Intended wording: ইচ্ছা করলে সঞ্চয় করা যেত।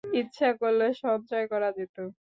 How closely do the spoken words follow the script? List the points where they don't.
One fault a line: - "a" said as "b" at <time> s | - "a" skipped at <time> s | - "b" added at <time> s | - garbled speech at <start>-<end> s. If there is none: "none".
none